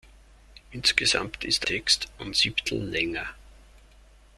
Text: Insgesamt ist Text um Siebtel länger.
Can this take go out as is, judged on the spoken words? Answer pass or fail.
pass